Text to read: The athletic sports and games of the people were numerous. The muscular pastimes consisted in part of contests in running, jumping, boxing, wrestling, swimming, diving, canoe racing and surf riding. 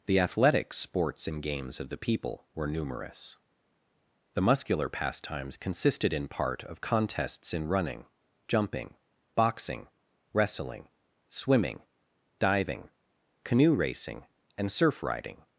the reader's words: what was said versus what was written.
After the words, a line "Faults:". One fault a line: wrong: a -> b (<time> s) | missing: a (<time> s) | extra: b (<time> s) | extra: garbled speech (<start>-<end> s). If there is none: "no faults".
The athletic sports and games of the people were numerous. The muscular pastimes consisted in part of contests in running, jumping, boxing, wrestling, swimming, diving, canoe racing and surf riding.
Faults:
no faults